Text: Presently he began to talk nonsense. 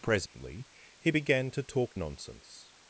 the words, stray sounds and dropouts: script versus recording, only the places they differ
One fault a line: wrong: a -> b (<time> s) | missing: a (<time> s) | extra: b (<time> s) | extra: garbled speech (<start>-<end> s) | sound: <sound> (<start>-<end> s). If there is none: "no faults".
sound: dropout (0.3-0.3 s)